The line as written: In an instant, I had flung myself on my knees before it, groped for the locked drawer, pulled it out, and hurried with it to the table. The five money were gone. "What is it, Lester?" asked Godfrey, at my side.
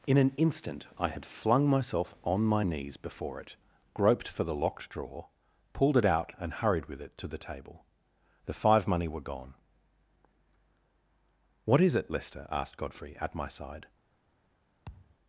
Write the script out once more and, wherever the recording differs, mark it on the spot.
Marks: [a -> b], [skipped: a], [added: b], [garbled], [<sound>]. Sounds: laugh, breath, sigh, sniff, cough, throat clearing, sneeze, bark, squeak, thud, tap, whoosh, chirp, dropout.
In an instant, I had flung myself on my knees before it, groped for the locked drawer, pulled it out, and hurried with it to the table. The five money were gone. "What is it, Lester?" asked Godfrey, at my side. [thud]